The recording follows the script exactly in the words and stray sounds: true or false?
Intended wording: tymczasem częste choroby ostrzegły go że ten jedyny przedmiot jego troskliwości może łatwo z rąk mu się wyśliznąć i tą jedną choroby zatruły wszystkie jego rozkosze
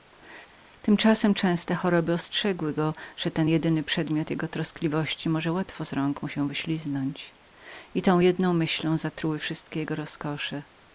false